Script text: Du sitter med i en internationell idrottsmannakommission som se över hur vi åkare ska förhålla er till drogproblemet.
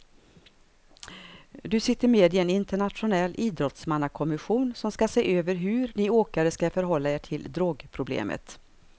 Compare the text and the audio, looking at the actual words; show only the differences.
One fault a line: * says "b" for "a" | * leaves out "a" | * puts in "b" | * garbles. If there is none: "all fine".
* puts in "ska"
* says "ni" for "vi"